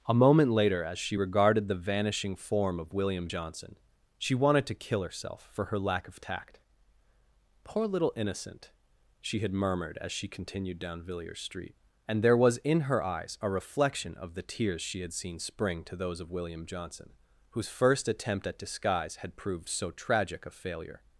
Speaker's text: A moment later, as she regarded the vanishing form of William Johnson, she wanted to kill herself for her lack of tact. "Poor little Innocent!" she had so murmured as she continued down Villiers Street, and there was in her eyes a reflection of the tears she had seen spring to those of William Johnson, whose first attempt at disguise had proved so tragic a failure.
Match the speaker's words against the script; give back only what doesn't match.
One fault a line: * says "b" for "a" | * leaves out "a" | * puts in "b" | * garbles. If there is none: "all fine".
* leaves out "so"